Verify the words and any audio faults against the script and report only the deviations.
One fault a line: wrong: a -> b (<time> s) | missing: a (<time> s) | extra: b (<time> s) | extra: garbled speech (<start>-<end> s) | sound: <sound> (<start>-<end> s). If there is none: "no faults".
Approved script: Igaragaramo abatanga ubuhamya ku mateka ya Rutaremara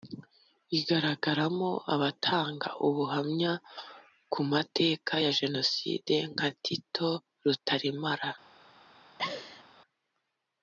extra: Jenoside nka Tito (5.4 s)
sound: laugh (9.2-9.6 s)